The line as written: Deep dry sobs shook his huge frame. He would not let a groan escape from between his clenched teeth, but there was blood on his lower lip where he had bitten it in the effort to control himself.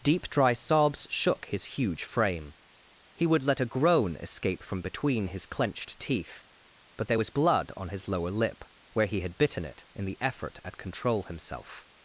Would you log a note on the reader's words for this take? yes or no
yes